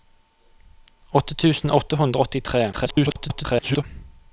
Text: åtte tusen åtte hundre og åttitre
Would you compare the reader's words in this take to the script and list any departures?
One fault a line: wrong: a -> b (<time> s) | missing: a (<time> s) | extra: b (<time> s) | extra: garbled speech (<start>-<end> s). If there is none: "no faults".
extra: garbled speech (2.7-3.8 s)